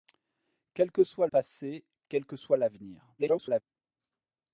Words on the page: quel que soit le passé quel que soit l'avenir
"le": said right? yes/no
no